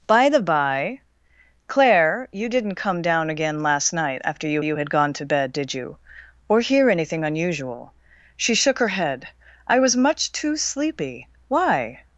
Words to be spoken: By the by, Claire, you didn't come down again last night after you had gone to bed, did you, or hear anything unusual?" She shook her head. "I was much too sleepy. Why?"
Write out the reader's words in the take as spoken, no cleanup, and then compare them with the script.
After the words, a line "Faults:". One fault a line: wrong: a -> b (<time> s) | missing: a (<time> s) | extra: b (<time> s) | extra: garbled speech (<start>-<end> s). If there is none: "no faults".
By the by, Claire, you didn't come down again last night after you you had gone to bed, did you, or hear anything unusual?" She shook her head. "I was much too sleepy. Why?"
Faults:
extra: you (4.6 s)